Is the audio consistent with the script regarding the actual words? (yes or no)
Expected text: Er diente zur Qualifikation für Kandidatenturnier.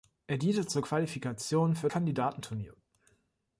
yes